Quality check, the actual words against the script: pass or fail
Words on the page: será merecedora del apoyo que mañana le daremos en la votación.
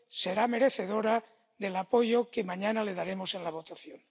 pass